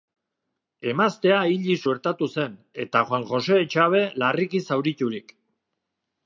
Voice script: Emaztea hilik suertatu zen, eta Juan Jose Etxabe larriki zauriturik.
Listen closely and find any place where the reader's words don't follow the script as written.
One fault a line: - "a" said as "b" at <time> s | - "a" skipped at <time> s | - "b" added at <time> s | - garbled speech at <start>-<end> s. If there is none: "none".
none